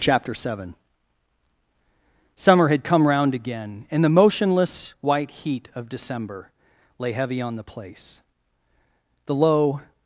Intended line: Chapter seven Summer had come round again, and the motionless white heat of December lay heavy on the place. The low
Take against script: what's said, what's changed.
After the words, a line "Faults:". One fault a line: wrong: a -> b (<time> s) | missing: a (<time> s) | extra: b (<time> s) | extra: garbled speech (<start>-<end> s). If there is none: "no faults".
Chapter seven Summer had come round again, and the motionless white heat of December lay heavy on the place. The low
Faults:
no faults